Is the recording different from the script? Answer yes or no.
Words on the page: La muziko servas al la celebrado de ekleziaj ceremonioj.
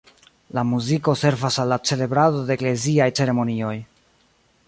no